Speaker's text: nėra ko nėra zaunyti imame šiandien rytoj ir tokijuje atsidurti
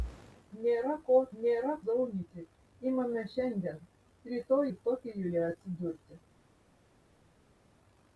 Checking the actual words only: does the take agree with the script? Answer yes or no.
yes